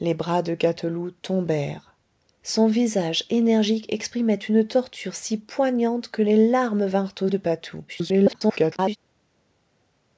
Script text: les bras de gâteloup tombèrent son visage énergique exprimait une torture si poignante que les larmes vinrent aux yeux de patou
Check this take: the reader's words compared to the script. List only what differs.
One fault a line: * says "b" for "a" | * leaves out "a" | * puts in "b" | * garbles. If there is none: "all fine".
* leaves out "yeux"
* garbles